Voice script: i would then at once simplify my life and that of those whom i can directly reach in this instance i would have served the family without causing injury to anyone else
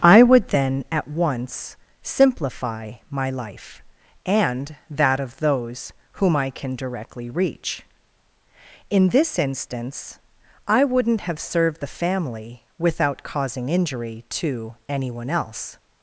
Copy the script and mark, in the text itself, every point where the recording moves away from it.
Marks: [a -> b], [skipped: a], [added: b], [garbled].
i would then at once simplify my life and that of those whom i can directly reach in this instance i [would -> wouldn't] have served the family without causing injury to anyone else